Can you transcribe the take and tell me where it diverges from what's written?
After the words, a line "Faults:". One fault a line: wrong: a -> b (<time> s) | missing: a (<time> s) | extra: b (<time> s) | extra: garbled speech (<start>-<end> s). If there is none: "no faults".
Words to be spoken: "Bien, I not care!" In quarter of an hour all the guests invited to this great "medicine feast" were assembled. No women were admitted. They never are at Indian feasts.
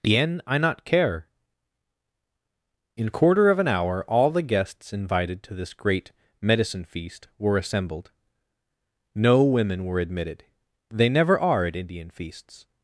"Bien, I not care!" In quarter of an hour all the guests invited to this great "medicine feast" were assembled. No women were admitted. They never are at Indian feasts.
Faults:
no faults